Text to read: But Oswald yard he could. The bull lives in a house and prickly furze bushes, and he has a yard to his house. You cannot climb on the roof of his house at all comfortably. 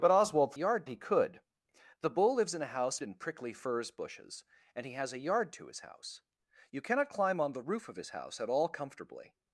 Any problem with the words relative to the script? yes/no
no